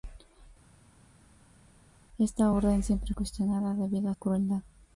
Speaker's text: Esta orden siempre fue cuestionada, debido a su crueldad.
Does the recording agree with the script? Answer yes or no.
no